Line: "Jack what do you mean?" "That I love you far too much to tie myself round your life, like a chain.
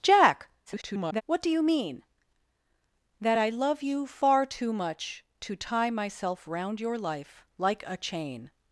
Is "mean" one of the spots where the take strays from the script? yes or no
no